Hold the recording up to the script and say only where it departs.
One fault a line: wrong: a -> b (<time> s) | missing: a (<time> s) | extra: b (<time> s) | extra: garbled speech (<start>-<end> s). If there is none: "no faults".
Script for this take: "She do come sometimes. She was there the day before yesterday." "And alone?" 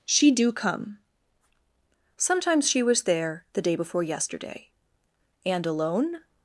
no faults